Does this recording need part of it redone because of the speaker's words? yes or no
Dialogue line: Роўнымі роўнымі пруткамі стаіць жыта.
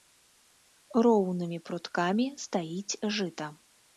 yes